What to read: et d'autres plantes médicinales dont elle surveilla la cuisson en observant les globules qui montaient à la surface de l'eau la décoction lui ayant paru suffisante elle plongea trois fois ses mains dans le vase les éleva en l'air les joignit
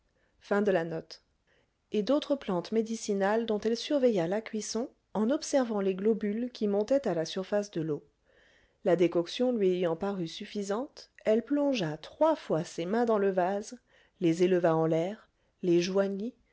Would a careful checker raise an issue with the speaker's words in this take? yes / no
no